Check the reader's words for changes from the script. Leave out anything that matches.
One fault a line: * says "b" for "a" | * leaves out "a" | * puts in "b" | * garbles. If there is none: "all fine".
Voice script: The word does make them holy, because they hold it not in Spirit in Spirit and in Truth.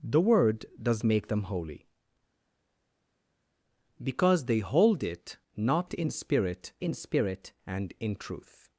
all fine